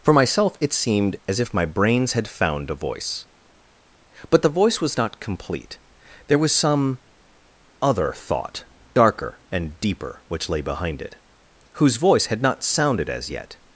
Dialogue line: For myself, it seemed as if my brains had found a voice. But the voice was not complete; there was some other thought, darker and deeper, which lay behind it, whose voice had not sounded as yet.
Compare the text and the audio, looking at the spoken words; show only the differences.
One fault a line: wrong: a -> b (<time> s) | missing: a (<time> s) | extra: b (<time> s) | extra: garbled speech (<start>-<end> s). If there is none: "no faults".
no faults